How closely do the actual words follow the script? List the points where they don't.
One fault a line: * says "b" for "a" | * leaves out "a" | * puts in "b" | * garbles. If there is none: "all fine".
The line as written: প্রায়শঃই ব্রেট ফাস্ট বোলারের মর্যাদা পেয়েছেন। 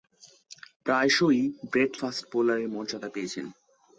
all fine